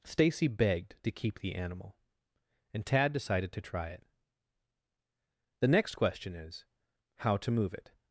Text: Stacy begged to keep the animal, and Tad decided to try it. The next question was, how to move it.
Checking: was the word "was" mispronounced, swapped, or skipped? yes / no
yes